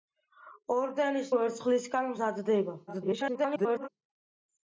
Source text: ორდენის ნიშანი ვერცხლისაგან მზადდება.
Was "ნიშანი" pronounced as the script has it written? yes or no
no